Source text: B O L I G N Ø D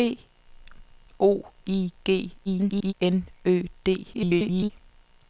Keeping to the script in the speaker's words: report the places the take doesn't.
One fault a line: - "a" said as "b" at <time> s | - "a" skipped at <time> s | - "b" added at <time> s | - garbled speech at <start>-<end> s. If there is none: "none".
- "L" skipped at 1.4 s
- garbled speech at 2.5-2.9 s
- garbled speech at 4.1-4.7 s